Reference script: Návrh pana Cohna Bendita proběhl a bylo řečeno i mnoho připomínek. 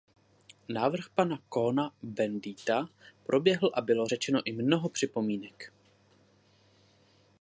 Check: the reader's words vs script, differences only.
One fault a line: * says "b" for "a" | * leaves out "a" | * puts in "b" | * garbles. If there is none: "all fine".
all fine